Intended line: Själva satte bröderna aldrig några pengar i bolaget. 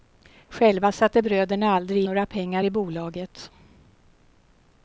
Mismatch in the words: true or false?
false